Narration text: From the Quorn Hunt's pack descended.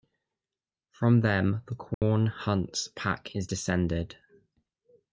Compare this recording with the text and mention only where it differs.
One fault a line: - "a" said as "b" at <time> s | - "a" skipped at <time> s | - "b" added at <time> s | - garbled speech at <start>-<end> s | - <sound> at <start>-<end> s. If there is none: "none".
- "them" added at 1.2 s
- dropout at 1.9-2.0 s
- "is" added at 3.4 s